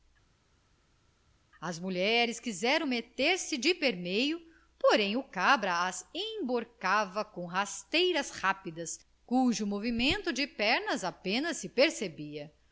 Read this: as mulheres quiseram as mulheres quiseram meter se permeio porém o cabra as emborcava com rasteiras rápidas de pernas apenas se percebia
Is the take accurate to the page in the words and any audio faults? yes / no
no